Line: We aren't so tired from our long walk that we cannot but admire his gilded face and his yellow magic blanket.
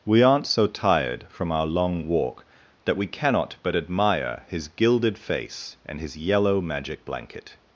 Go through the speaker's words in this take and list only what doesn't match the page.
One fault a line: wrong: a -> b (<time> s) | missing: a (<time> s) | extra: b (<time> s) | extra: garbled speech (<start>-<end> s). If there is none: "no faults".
no faults